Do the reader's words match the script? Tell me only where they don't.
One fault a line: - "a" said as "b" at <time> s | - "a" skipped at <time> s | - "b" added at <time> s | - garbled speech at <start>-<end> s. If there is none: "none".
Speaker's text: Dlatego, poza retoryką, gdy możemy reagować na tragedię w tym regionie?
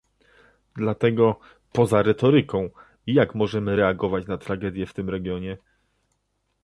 - "gdy" said as "jak" at 3.1 s